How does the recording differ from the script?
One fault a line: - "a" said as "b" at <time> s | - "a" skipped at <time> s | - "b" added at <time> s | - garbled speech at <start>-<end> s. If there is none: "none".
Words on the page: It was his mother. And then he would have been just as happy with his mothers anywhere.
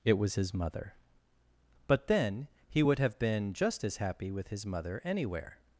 - "And" said as "But" at 1.9 s
- "mothers" said as "mother" at 4.7 s